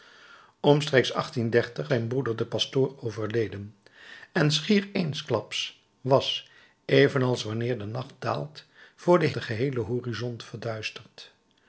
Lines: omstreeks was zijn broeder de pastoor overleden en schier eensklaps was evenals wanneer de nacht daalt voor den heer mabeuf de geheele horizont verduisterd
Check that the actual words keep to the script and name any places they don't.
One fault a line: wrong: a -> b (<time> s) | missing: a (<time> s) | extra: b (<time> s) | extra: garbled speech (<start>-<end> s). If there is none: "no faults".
missing: was (1.1 s)
missing: heer mabeuf (9.3 s)